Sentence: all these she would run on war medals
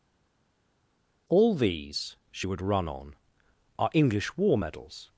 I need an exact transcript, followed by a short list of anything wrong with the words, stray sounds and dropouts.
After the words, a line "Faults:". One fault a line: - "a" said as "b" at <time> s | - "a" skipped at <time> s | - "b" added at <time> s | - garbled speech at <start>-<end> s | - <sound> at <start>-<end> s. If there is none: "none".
all these she would run on are english war medals
Faults:
- "are english" added at 3.8 s